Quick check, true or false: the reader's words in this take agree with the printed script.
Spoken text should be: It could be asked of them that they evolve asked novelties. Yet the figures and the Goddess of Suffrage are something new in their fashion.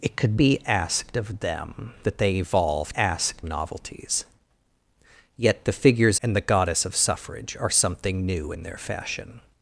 true